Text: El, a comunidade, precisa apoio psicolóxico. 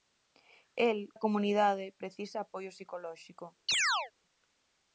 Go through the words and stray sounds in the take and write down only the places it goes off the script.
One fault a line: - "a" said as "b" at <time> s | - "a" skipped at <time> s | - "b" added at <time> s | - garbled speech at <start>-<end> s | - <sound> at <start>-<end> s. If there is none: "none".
- chirp at 3.7-4.1 s